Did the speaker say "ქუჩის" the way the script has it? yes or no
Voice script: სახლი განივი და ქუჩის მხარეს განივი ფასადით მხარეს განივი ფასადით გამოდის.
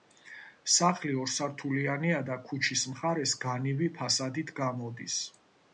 yes